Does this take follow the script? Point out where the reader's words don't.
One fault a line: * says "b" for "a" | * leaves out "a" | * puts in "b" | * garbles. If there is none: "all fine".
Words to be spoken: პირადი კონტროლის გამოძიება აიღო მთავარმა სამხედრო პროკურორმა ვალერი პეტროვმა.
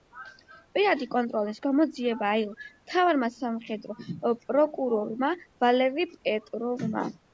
all fine